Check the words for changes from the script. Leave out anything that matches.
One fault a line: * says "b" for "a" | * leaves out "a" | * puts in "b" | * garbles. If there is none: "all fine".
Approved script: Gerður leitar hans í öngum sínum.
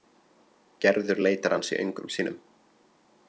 all fine